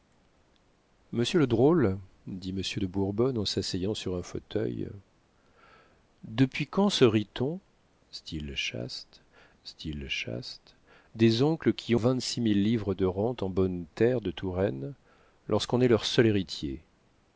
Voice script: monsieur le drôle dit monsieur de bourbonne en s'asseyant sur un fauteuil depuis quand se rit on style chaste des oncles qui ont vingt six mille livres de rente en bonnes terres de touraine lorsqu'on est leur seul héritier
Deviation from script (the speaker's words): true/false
true